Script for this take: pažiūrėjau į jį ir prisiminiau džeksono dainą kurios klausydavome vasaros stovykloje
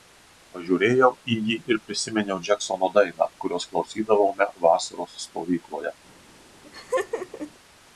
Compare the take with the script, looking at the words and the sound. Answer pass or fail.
fail